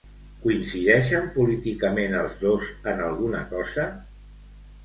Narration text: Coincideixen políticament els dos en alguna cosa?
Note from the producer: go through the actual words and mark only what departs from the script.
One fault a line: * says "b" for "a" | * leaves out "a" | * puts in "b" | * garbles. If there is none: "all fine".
all fine